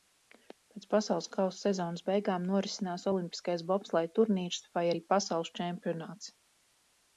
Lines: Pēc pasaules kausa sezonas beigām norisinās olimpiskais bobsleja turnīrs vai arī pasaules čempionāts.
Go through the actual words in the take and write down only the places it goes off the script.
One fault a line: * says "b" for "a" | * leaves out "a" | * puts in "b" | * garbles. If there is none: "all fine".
all fine